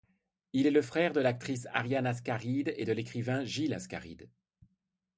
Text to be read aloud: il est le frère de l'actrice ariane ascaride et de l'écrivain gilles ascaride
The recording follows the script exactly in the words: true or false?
true